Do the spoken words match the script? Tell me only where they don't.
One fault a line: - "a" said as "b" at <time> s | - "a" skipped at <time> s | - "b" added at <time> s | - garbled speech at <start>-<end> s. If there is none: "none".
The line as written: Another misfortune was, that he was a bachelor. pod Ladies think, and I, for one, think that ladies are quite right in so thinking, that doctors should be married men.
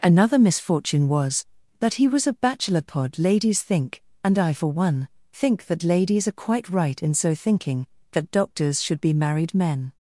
none